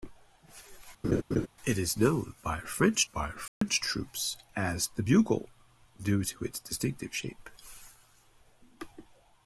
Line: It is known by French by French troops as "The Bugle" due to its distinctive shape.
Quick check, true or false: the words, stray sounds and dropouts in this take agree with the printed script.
false